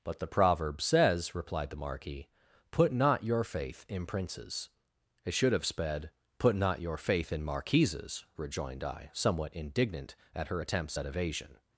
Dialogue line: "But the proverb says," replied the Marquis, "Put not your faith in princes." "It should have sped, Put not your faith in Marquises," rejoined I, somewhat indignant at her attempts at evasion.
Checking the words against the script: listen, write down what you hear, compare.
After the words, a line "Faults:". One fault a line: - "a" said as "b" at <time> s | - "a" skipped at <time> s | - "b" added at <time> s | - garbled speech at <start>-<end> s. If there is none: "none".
"But the proverb says," replied the Marquis, "Put not your faith in princes." "It should have sped, Put not your faith in Marquises," rejoined I, somewhat indignant at her attempts at evasion.
Faults:
none